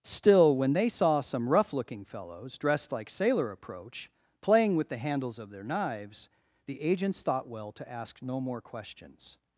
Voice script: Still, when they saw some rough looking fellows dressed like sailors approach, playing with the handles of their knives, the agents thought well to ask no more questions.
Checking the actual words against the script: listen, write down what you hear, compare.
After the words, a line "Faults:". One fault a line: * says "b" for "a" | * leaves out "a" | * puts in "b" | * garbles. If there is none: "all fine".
Still, when they saw some rough looking fellows dressed like sailor approach, playing with the handles of their knives, the agents thought well to ask no more questions.
Faults:
* says "sailor" for "sailors"